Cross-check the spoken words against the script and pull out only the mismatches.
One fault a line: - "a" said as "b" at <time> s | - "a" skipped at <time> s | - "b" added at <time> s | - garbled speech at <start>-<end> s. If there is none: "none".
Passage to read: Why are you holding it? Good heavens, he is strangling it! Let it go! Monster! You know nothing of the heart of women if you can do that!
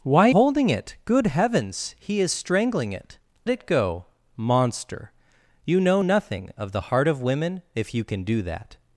- "are you" skipped at 0.3 s
- "Let" skipped at 3.2 s